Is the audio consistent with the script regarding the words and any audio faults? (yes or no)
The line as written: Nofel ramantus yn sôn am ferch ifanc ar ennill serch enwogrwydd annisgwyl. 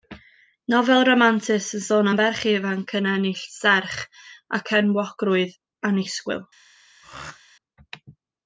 no